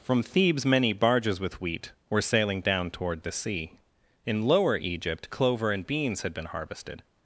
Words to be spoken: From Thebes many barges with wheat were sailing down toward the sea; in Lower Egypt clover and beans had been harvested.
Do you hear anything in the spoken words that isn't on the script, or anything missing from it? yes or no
no